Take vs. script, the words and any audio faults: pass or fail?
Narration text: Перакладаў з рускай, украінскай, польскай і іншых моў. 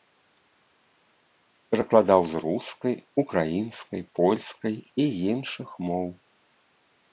pass